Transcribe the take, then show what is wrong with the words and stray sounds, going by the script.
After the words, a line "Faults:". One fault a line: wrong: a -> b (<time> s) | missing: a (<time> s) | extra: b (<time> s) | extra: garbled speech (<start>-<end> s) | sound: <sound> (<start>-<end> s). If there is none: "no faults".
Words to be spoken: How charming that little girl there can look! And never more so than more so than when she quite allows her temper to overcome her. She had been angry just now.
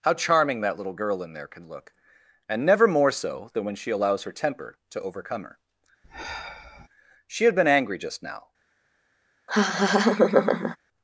How charming that little girl in there can look! And never more so than when she allows her temper to overcome her. She had been angry just now.
Faults:
extra: in (1.2 s)
missing: more so than (3.6 s)
missing: quite (3.9 s)
sound: sigh (6.0-6.9 s)
sound: laugh (9.5-10.8 s)